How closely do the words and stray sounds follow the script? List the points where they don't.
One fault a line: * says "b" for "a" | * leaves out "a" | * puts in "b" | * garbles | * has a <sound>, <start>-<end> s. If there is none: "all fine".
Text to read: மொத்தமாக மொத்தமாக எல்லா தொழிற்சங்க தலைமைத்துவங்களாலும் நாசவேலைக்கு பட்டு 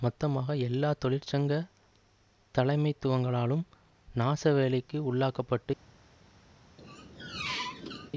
* leaves out "மொத்தமாக"
* puts in "உள்ளாக்க"
* has a squeak, 6.8-8.1 s